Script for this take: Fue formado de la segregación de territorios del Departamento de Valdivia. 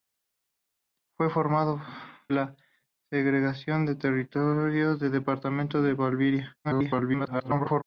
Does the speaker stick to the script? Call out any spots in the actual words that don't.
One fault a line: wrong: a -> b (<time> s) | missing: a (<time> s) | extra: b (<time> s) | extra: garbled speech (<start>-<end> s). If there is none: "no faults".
missing: de (1.8 s)
extra: garbled speech (6.6-7.8 s)